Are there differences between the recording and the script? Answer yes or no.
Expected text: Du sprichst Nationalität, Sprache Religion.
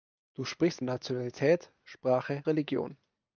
no